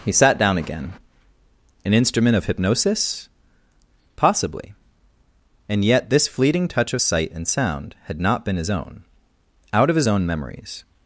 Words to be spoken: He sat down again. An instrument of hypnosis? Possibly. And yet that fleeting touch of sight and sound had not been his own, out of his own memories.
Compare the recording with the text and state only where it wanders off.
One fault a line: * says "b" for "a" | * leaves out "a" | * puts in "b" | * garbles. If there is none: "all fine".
* says "this" for "that"